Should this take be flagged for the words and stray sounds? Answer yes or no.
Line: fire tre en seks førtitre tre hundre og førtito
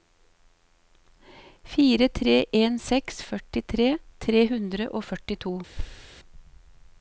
yes